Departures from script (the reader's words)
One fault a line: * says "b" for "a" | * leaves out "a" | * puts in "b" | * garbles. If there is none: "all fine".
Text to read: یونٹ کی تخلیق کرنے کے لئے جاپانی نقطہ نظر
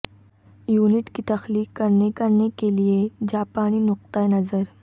* puts in "کرنے"